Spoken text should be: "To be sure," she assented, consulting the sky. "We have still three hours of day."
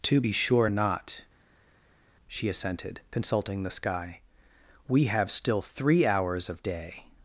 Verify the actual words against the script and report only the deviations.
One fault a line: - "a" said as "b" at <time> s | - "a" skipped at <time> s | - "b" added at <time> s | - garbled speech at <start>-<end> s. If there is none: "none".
- "not" added at 0.7 s